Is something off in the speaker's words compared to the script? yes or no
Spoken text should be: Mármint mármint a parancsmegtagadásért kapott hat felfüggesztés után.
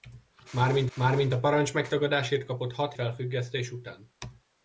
no